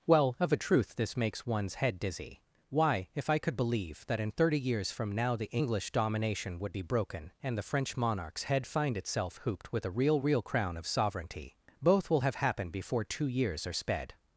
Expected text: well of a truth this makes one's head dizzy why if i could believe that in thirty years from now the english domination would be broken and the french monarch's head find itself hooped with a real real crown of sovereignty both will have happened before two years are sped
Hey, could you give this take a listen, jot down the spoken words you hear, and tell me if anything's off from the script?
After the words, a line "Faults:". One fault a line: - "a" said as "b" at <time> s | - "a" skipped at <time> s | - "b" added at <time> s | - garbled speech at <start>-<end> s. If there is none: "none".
well of a truth this makes one's head dizzy why if i could believe that in thirty years from now the english domination would be broken and the french monarch's head find itself hooped with a real real crown of sovereignty both will have happened before two years are sped
Faults:
none